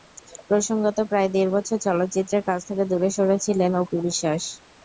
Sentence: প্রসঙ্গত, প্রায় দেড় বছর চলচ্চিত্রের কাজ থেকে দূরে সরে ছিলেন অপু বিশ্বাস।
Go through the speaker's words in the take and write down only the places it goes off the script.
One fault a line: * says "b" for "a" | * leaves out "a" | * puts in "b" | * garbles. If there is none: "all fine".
all fine